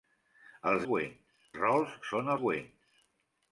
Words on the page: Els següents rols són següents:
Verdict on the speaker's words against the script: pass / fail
pass